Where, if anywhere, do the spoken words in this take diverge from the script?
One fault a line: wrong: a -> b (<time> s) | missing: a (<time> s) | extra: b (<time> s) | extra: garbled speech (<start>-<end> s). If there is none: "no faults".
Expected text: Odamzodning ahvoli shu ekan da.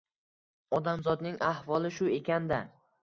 no faults